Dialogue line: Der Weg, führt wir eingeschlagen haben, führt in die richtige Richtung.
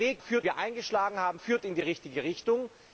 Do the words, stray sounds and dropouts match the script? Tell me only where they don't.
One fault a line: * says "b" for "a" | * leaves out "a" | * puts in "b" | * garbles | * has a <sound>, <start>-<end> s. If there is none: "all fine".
all fine